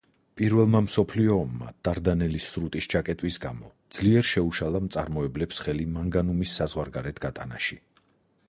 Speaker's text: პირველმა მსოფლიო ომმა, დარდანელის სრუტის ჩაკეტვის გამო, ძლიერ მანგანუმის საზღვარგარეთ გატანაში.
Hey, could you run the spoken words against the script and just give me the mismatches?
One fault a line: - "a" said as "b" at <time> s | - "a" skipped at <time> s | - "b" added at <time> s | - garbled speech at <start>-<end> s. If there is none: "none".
- "შეუშალა მწარმოებლებს ხელი" added at 4.3 s